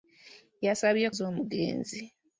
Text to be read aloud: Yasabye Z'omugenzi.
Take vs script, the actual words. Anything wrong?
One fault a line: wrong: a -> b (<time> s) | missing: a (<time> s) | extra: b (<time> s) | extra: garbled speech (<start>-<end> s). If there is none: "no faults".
no faults